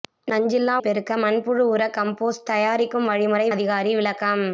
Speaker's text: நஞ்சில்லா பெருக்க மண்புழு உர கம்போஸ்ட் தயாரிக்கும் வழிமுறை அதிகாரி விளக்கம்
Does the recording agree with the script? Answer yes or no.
yes